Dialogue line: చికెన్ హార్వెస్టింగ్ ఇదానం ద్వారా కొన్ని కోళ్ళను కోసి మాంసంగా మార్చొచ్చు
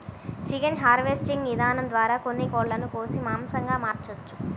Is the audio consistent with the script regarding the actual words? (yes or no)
yes